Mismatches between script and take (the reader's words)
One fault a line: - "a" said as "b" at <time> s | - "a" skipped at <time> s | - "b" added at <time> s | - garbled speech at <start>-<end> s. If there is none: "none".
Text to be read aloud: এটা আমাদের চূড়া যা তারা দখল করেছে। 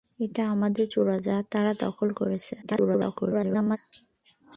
- garbled speech at 2.6-3.8 s